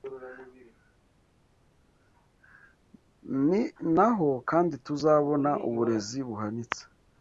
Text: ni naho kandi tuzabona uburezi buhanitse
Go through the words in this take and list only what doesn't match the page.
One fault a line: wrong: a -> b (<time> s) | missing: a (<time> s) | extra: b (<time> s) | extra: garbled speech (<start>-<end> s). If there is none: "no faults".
no faults